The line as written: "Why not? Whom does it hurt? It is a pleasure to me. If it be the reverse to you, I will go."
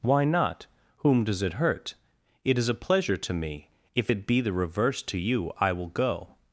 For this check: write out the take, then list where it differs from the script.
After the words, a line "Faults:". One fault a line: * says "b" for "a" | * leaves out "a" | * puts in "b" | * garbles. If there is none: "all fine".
"Why not? Whom does it hurt? It is a pleasure to me. If it be the reverse to you, I will go."
Faults:
all fine